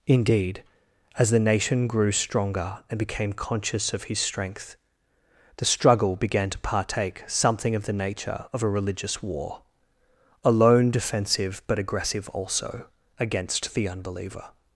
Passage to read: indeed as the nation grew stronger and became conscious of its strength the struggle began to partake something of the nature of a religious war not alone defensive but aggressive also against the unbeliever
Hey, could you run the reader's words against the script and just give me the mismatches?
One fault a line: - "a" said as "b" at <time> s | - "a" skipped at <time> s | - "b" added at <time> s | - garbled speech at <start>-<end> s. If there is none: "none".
- "its" said as "his" at 4.0 s
- "not" skipped at 9.6 s